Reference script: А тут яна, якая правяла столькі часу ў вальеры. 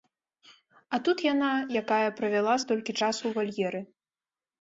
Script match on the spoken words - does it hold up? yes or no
yes